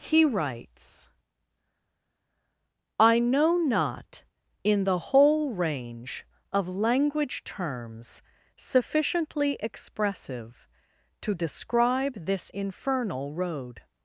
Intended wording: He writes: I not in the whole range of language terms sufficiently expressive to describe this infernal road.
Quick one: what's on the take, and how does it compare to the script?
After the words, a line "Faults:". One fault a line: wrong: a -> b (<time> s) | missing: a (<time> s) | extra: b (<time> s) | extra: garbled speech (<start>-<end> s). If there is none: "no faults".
He writes: I know not in the whole range of language terms sufficiently expressive to describe this infernal road.
Faults:
extra: know (3.2 s)